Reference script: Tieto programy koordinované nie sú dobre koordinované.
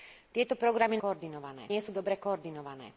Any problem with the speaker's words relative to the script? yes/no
no